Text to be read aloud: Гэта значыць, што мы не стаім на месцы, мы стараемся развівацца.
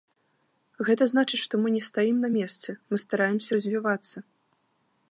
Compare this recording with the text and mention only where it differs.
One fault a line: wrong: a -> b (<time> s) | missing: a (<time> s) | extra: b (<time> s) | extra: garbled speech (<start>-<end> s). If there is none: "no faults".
no faults